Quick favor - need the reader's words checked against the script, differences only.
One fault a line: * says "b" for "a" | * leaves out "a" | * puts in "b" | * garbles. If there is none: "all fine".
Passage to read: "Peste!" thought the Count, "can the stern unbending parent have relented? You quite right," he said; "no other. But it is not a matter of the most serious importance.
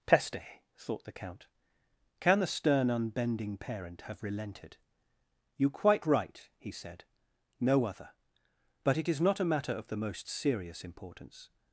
all fine